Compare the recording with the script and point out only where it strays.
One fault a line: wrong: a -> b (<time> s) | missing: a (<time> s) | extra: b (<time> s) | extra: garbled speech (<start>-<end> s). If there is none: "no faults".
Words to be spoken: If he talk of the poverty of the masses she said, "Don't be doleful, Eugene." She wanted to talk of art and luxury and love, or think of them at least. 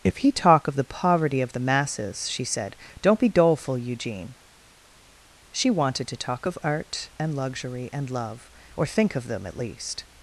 no faults